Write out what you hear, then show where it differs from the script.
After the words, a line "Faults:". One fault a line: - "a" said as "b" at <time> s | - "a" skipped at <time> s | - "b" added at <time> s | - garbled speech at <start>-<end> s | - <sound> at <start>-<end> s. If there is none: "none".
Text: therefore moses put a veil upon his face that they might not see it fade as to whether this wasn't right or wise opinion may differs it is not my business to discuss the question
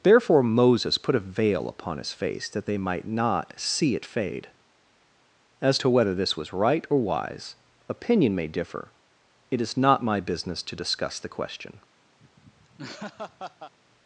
therefore moses put a veil upon his face that they might not see it fade as to whether this was right or wise opinion may differ it is not my business to discuss the question
Faults:
- "wasn't" said as "was" at 6.4 s
- "differs" said as "differ" at 8.5 s
- laugh at 12.2-13.7 s